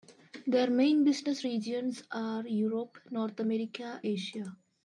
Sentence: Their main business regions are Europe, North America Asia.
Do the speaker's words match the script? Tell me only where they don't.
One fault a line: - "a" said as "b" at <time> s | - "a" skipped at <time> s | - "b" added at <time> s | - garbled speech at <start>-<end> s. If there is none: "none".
none